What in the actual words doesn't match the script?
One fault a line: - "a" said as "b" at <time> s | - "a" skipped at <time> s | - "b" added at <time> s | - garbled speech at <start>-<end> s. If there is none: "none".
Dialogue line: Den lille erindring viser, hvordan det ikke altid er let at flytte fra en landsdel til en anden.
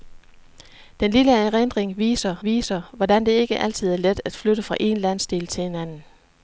- "viser" added at 2.4 s